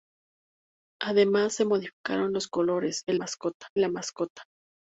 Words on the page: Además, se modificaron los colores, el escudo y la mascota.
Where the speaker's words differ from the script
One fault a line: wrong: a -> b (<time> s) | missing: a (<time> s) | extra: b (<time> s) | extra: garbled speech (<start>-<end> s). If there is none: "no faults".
wrong: escudo -> mascota (3.1 s)